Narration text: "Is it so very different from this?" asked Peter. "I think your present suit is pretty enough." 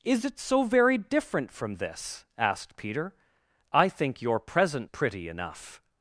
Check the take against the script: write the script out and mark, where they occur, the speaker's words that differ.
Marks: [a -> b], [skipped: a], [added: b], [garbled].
"Is it so very different from this?" asked Peter. "I think your present [skipped: suit is] pretty enough."